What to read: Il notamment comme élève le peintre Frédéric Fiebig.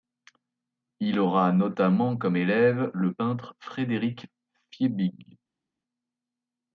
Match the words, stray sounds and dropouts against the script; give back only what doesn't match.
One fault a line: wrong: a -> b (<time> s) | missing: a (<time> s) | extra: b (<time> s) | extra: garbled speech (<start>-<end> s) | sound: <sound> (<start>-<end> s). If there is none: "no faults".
extra: aura (1.2 s)